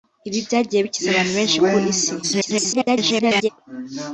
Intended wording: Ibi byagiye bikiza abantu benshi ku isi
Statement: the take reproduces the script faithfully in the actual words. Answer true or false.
false